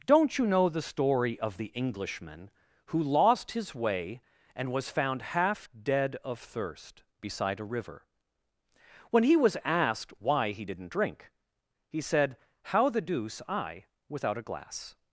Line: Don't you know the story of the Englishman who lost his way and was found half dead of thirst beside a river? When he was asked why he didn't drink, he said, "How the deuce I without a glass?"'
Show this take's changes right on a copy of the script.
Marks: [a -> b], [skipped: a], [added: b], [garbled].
Don't you know the story of the Englishman who lost his way and was found half dead of thirst beside a river? When he was asked why he didn't drink, he said, "How the deuce I without a glass?"'